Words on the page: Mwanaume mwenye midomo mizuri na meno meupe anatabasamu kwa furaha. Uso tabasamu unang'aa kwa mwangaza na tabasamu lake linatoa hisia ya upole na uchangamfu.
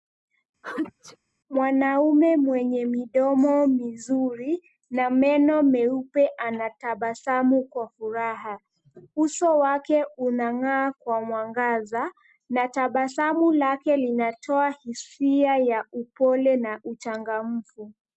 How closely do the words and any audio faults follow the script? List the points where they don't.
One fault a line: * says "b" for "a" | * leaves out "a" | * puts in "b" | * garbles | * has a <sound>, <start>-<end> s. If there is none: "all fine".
* has a sneeze, 0.6-1.2 s
* says "wake" for "tabasamu"